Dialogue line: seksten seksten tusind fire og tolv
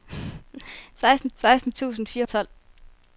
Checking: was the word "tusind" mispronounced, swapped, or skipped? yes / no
no